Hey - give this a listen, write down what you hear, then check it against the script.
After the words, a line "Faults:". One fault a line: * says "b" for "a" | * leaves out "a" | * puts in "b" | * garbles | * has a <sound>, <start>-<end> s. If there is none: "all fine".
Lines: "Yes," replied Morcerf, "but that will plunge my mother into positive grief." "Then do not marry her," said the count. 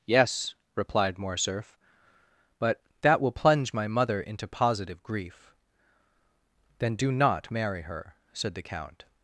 "Yes," replied Morcerf, "but that will plunge my mother into positive grief." "Then do not marry her," said the count.
Faults:
all fine